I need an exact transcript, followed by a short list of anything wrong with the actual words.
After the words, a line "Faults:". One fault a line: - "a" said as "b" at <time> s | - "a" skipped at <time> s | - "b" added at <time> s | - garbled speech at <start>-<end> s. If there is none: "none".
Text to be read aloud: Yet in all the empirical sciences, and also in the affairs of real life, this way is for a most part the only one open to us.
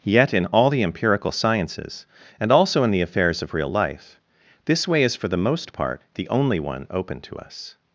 Yet in all the empirical sciences, and also in the affairs of real life, this way is for the most part the only one open to us.
Faults:
- "a" said as "the" at 5.3 s